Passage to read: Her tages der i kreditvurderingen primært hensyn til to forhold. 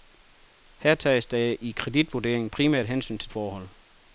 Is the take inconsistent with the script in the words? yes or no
yes